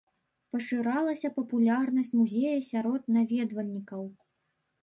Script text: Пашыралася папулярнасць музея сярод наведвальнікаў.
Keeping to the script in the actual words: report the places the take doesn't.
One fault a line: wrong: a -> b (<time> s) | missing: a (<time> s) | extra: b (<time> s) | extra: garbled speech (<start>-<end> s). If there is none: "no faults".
no faults